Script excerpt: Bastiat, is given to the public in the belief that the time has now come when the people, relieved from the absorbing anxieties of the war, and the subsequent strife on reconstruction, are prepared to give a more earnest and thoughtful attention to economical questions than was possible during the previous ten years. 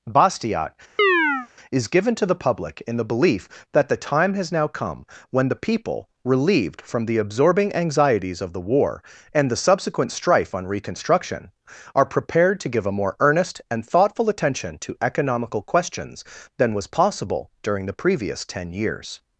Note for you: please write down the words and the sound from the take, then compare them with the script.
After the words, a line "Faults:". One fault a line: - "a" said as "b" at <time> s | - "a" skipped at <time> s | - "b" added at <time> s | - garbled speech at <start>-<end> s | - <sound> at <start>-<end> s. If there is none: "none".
Bastiat, is given to the public in the belief that the time has now come when the people, relieved from the absorbing anxieties of the war, and the subsequent strife on reconstruction, are prepared to give a more earnest and thoughtful attention to economical questions than was possible during the previous ten years.
Faults:
- chirp at 1.0-1.5 s